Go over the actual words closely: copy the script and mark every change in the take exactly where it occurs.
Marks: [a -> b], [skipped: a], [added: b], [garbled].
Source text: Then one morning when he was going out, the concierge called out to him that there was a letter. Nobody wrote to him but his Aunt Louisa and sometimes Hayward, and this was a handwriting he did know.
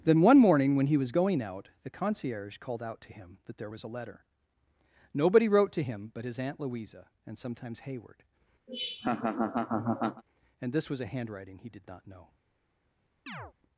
Then one morning when he was going out, the concierge called out to him that there was a letter. Nobody wrote to him but his Aunt Louisa and sometimes Hayward, and this was a handwriting he did [added: not] know.